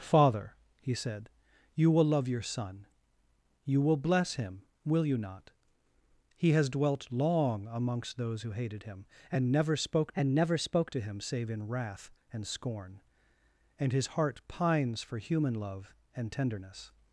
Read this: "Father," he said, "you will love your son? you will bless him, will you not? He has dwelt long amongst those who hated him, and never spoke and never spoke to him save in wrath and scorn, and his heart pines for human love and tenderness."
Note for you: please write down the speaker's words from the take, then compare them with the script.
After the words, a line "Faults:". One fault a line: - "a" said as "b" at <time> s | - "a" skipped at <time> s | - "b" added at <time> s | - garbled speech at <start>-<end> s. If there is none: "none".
"Father," he said, "you will love your son? you will bless him, will you not? He has dwelt long amongst those who hated him, and never spoke and never spoke to him save in wrath and scorn, and his heart pines for human love and tenderness."
Faults:
none